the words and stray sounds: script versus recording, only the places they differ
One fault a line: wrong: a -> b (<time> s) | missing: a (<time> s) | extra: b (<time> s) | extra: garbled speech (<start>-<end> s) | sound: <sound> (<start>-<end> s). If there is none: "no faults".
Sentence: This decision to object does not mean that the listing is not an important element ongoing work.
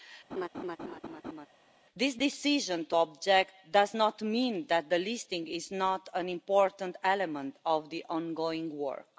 sound: laugh (0.3-1.5 s)
extra: of the (7.7 s)